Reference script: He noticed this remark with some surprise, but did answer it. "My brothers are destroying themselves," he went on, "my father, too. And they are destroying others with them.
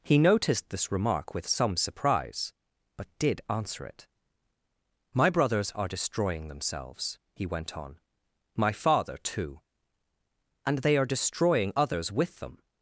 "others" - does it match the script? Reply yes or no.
yes